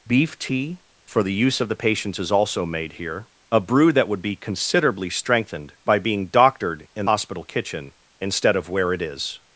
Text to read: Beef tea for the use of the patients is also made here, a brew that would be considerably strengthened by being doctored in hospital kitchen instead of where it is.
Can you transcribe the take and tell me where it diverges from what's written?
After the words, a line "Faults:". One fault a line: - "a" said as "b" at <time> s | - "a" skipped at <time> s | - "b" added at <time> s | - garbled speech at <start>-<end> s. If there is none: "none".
Beef tea for the use of the patients is also made here, a brew that would be considerably strengthened by being doctored in hospital kitchen instead of where it is.
Faults:
none